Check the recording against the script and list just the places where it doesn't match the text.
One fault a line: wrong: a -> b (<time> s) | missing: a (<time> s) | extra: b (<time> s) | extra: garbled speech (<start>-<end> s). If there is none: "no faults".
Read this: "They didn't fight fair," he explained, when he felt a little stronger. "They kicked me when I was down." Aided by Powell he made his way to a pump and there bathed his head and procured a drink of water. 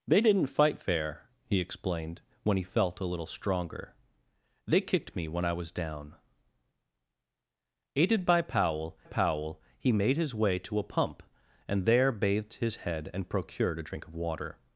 extra: Powell (9.0 s)